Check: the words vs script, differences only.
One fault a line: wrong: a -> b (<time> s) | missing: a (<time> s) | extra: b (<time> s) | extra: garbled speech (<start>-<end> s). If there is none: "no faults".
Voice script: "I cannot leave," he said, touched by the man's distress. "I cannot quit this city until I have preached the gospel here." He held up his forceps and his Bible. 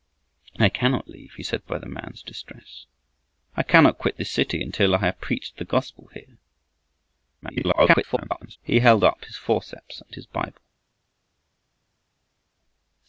missing: touched (1.7 s)
extra: garbled speech (7.4-8.6 s)